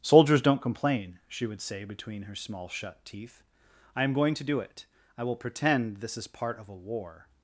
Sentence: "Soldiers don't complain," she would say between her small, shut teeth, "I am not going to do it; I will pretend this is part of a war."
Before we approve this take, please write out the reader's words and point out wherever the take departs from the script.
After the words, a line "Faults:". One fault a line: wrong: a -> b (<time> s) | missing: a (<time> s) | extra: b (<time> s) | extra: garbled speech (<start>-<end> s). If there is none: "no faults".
"Soldiers don't complain," she would say between her small, shut teeth, "I am going to do it; I will pretend this is part of a war."
Faults:
missing: not (4.1 s)